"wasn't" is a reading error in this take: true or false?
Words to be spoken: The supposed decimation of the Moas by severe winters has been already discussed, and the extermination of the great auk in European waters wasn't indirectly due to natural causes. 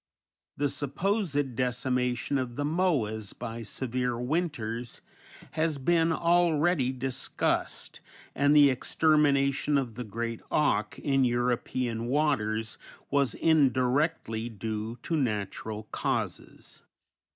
true